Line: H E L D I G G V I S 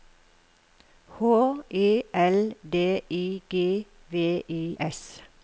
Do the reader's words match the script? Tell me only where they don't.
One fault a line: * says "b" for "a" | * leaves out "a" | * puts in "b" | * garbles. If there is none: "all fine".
* leaves out "G"